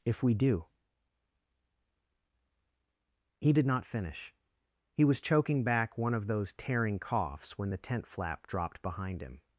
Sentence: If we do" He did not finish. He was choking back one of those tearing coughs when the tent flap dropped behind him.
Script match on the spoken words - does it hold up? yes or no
yes